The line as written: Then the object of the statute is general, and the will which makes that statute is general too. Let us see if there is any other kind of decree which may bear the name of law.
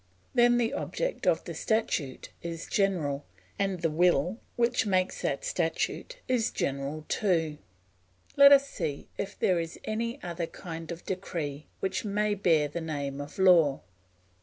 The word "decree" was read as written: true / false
true